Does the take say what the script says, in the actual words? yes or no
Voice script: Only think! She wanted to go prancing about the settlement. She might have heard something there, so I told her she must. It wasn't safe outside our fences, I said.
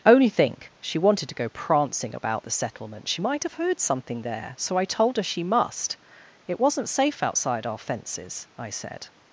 yes